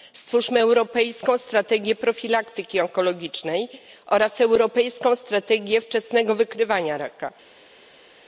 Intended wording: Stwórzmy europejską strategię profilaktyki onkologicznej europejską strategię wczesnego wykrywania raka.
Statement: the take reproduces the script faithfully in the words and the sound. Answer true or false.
false